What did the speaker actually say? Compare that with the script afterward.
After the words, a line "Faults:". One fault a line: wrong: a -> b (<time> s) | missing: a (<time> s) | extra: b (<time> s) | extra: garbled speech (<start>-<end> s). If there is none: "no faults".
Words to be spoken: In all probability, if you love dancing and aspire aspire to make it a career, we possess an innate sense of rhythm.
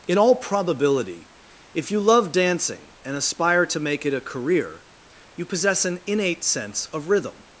In all probability, if you love dancing and aspire to make it a career, you possess an innate sense of rhythm.
Faults:
missing: aspire (3.7 s)
wrong: we -> you (5.3 s)